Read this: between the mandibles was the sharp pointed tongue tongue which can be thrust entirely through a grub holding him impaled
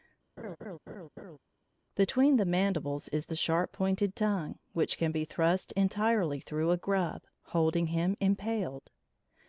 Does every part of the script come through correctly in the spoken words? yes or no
no